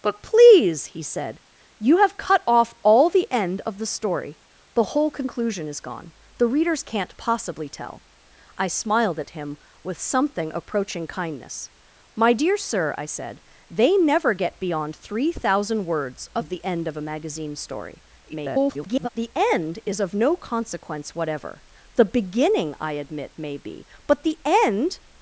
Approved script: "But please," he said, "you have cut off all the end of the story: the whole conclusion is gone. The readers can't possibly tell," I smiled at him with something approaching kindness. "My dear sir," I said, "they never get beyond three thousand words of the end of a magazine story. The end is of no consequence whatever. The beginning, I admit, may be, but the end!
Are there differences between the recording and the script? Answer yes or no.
yes